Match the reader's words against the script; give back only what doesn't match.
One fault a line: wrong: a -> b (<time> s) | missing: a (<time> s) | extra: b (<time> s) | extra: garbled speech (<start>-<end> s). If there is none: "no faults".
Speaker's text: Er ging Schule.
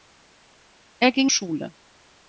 no faults